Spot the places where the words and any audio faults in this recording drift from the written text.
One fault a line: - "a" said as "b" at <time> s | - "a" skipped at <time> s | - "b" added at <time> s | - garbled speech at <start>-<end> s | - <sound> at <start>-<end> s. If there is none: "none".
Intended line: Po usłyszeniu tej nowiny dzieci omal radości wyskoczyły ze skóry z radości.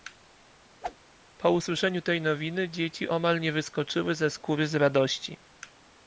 - whoosh at 0.8-1.0 s
- "radości" said as "nie" at 3.4 s